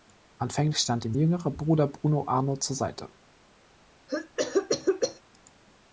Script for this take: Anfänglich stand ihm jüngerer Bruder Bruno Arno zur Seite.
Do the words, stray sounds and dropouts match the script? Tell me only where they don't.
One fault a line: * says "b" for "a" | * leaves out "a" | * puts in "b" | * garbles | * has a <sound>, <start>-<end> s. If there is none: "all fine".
* has a cough, 4.1-5.2 s